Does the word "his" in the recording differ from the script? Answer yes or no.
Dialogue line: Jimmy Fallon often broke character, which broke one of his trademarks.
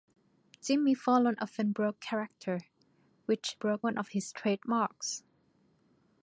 no